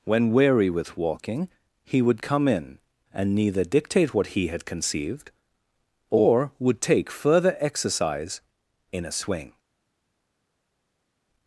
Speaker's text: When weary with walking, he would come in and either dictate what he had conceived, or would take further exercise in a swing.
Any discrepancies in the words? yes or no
yes